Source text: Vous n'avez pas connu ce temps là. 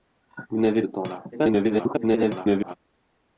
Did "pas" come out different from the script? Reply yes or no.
yes